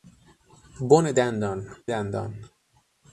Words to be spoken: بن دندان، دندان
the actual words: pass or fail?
pass